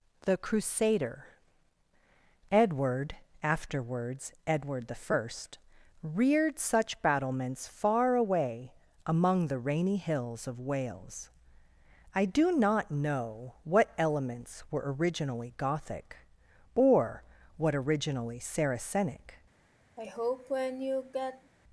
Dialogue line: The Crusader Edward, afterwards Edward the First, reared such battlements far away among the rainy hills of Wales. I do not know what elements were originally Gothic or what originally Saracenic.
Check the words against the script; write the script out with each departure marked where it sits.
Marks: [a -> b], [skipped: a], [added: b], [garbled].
The Crusader Edward, afterwards Edward the First, reared such battlements far away among the rainy hills of Wales. I do not know what elements were originally Gothic or what originally Saracenic.